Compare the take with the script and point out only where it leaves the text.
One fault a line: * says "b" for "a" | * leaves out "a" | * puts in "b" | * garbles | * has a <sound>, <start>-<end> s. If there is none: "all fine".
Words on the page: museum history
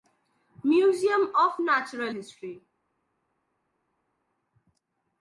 * puts in "of natural"